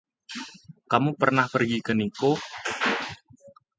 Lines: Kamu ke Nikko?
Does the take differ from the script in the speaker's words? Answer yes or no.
yes